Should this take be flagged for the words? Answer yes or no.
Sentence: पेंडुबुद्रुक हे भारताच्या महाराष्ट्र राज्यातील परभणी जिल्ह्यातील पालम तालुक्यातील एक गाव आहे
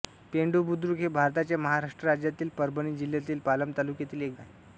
yes